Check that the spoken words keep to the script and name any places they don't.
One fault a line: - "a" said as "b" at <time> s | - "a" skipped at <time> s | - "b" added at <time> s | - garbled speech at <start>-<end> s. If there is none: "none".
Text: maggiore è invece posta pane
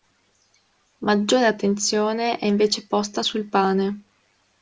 - "attenzione" added at 1.4 s
- "sul" added at 3.2 s